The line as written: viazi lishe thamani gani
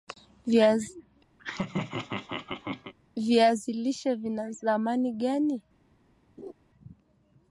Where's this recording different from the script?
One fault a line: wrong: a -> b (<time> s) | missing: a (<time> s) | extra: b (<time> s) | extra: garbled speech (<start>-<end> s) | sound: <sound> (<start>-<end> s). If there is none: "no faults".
sound: laugh (1.4-2.9 s)
extra: vina (4.1 s)
sound: laugh (6.4-6.5 s)